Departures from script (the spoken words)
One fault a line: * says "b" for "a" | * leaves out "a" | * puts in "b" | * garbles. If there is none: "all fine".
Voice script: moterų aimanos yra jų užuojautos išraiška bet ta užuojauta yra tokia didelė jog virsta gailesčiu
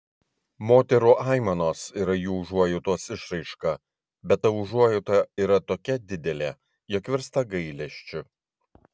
all fine